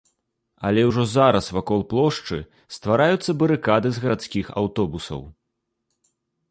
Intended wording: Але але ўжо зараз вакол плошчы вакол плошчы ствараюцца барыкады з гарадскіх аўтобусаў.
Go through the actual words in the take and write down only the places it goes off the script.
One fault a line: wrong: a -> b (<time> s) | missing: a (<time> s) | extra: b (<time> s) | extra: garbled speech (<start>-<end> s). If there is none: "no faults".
missing: але (0.8 s)
missing: вакол плошчы (2.4 s)